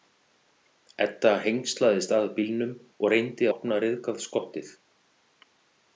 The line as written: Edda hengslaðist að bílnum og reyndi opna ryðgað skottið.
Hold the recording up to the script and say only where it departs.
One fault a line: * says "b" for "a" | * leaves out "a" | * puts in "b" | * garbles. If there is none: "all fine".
all fine